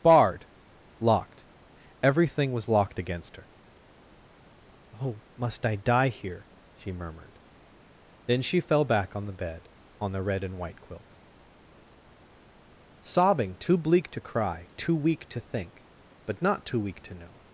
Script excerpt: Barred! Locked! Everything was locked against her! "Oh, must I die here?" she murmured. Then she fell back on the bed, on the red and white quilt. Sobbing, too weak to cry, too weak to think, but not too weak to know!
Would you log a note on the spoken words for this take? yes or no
yes